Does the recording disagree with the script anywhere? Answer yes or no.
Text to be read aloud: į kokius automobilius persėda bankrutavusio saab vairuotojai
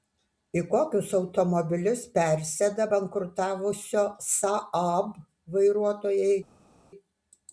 no